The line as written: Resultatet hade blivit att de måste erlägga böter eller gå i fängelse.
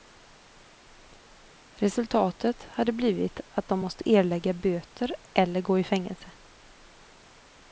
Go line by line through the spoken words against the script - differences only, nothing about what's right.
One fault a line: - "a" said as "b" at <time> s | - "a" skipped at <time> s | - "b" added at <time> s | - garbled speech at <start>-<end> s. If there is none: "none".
none